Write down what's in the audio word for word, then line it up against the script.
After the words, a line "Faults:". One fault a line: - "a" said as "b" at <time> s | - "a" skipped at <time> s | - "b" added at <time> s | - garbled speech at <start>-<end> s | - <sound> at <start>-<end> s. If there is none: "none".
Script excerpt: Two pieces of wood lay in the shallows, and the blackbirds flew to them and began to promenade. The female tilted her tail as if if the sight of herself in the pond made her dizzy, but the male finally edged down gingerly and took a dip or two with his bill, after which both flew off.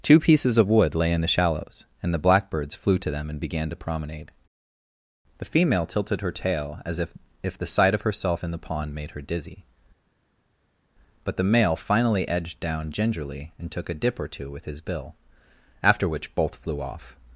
Two pieces of wood lay in the shallows, and the blackbirds flew to them and began to promenade. The female tilted her tail as if if the sight of herself in the pond made her dizzy, but the male finally edged down gingerly and took a dip or two with his bill, after which both flew off.
Faults:
none